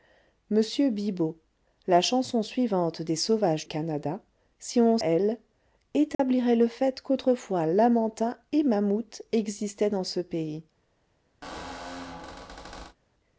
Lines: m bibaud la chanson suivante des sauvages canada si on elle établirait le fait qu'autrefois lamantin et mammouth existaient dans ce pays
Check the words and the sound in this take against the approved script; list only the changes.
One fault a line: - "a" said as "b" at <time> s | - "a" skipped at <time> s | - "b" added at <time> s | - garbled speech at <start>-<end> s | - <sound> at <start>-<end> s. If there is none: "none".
- dropout at 6.1-6.2 s
- squeak at 11.4-13.0 s